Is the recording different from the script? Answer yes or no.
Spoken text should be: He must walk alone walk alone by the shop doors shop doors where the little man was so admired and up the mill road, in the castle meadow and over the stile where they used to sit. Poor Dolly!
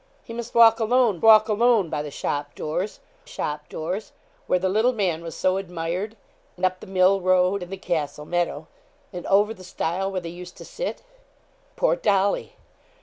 no